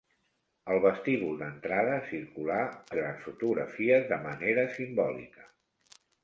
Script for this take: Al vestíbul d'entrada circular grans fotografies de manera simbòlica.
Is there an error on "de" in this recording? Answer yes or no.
no